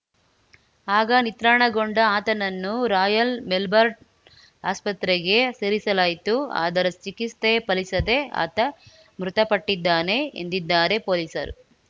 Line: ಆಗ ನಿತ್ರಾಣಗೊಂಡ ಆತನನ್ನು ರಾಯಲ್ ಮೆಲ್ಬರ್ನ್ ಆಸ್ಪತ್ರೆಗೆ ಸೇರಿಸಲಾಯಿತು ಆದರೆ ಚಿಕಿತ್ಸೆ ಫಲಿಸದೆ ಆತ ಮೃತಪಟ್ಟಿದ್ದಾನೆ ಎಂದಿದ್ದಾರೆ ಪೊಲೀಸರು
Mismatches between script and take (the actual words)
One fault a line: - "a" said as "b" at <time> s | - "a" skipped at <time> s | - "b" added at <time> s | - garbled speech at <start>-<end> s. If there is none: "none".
none